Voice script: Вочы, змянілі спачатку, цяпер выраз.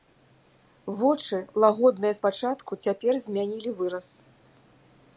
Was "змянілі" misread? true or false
true